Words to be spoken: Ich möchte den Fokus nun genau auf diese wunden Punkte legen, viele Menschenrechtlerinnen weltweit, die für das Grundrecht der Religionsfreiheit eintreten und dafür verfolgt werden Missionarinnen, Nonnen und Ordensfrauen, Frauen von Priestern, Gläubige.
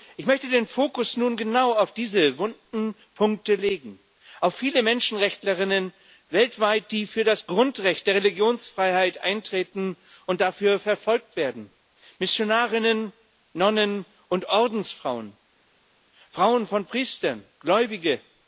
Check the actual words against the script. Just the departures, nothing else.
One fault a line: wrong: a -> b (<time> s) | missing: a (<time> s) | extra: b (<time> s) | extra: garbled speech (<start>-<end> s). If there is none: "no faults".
extra: auf (4.4 s)